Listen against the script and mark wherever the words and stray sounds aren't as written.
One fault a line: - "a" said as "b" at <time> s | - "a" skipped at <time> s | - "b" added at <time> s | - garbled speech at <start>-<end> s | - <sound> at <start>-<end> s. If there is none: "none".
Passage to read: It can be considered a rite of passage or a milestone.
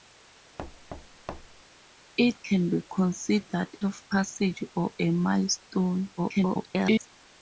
- thud at 0.6-1.6 s
- "a rite" skipped at 3.7 s
- garbled speech at 6.2-7.1 s